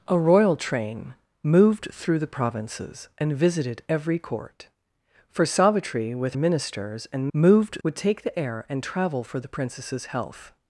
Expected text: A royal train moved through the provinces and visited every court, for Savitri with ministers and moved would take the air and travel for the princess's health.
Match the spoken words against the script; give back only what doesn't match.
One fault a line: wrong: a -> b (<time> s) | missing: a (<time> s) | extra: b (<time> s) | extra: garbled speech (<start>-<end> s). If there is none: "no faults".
no faults